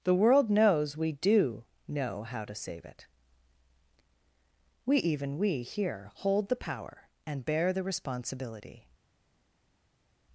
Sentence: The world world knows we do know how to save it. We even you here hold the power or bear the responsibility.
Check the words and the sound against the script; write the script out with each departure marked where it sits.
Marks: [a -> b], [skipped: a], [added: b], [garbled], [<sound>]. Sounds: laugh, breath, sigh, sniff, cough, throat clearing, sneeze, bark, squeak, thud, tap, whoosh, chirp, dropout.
The world [skipped: world] knows we do know how to save it. We even [you -> we] here hold the power [or -> and] bear the responsibility.